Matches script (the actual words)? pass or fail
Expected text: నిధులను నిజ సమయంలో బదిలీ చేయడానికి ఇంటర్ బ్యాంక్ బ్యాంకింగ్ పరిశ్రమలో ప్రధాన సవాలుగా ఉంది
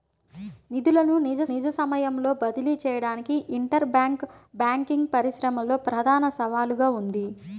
fail